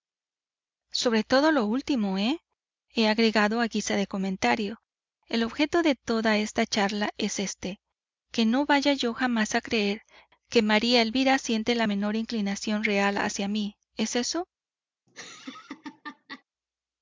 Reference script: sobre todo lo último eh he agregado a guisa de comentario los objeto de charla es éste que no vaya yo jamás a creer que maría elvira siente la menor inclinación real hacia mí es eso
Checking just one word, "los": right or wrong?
wrong